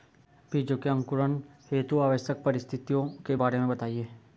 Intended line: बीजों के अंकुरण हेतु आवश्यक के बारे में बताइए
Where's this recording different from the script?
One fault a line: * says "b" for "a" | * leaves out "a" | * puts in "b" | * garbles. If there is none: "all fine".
* puts in "परिस्थितियों"